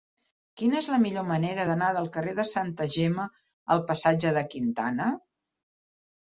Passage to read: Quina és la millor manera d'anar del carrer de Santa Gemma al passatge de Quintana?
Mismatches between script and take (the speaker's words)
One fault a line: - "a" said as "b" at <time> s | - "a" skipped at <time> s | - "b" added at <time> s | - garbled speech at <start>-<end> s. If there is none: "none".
none